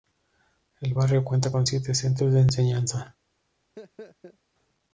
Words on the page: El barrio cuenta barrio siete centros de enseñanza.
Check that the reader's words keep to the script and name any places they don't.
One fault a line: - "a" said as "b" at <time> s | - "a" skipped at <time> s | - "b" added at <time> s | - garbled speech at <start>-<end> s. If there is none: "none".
- "barrio" said as "con" at 1.5 s